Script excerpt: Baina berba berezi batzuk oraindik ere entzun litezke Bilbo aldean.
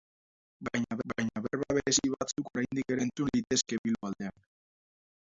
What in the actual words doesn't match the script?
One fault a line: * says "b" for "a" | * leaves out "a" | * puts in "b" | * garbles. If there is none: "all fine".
* puts in "baina"
* leaves out "ere"